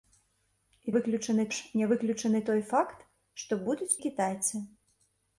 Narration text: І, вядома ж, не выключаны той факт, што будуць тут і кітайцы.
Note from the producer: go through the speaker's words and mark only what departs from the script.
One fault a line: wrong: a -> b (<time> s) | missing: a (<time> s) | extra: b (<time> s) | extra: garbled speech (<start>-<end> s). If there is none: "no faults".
wrong: вядома -> выключаны (1.0 s)
missing: тут (3.9 s)